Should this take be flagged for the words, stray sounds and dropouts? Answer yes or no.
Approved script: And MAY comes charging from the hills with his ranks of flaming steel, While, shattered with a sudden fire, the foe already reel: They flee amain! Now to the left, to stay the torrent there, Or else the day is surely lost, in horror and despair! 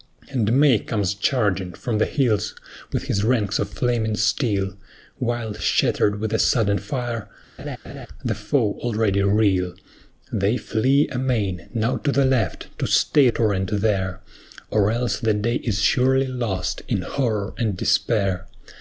yes